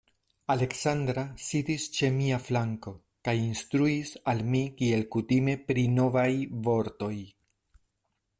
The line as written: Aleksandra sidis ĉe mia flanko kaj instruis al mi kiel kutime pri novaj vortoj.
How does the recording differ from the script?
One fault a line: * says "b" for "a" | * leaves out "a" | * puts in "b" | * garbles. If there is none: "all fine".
all fine